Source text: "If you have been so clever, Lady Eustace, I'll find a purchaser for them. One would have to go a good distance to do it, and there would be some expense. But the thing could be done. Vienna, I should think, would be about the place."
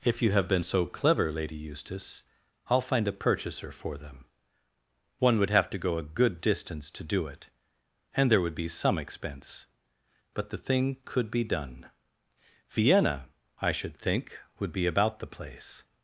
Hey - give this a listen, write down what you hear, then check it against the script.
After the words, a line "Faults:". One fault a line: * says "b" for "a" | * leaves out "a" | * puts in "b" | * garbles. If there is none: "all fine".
"If you have been so clever, Lady Eustace, I'll find a purchaser for them. One would have to go a good distance to do it, and there would be some expense. But the thing could be done. Vienna, I should think, would be about the place."
Faults:
all fine